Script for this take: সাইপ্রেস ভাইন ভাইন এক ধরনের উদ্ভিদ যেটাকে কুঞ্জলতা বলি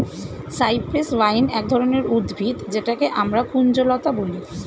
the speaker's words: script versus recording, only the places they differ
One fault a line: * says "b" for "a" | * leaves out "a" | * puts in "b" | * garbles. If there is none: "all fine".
* leaves out "ভাইন"
* puts in "আমরা"